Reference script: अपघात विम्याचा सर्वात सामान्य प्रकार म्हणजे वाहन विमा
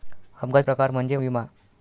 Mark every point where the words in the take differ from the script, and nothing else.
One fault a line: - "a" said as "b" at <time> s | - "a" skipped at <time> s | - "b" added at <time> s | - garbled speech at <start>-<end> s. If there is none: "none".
- "विम्याचा सर्वात सामान्य" skipped at 0.7 s
- "वाहन" skipped at 1.2 s